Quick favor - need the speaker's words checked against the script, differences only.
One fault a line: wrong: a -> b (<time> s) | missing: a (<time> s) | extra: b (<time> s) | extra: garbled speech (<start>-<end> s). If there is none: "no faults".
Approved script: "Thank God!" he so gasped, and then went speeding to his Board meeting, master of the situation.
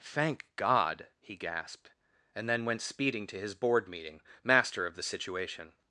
missing: so (1.4 s)